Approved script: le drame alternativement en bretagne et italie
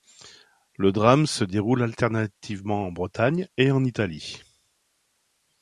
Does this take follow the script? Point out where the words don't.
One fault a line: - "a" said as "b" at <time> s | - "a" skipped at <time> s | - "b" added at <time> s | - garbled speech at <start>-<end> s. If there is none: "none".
- "se déroule" added at 1.3 s
- "en" added at 3.7 s